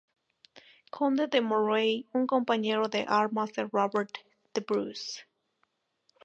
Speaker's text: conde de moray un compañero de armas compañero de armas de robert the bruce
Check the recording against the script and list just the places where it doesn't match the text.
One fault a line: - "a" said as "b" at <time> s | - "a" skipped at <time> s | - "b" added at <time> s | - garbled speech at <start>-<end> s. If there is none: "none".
- "compañero de armas" skipped at 3.5 s